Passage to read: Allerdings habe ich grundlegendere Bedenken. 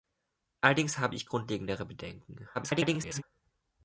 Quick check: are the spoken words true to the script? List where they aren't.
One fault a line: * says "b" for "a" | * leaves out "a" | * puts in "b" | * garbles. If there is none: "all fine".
* garbles